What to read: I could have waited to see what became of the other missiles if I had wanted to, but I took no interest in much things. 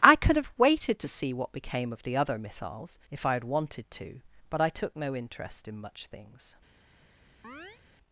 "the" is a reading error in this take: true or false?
false